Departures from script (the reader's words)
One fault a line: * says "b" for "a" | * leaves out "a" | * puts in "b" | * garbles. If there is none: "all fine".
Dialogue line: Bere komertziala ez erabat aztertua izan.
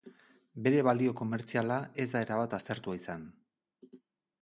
* puts in "balio"
* puts in "da"